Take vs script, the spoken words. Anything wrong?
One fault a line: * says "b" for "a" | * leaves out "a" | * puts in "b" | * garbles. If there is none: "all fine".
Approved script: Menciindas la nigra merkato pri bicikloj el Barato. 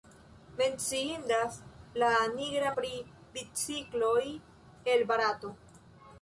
* leaves out "merkato"